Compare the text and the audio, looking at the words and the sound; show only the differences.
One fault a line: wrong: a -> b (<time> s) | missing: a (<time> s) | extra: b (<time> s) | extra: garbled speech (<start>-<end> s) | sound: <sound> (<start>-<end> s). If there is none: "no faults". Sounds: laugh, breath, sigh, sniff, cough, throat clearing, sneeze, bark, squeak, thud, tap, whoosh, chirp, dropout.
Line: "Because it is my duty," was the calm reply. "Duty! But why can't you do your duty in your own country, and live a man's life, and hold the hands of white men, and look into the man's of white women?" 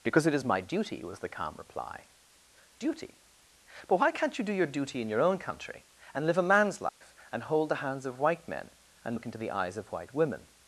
sound: dropout (6.9-7.0 s)
wrong: man's -> eyes (9.5 s)